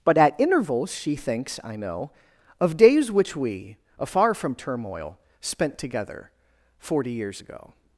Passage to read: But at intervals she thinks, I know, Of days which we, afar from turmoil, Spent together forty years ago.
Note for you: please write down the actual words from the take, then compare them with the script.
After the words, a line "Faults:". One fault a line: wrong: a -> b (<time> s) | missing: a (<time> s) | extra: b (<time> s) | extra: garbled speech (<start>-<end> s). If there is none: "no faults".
But at intervals she thinks, I know, Of days which we, afar from turmoil, Spent together forty years ago.
Faults:
no faults